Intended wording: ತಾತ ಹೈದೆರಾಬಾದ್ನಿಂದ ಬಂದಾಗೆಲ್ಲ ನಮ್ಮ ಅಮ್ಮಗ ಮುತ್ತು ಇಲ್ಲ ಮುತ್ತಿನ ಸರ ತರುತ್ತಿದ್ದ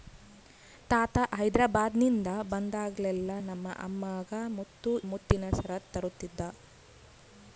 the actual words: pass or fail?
fail